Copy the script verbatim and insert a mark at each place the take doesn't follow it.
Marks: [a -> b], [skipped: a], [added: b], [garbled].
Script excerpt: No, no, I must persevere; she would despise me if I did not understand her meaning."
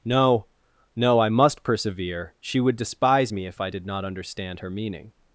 No, no, I must persevere; she would despise me if I did not understand her meaning."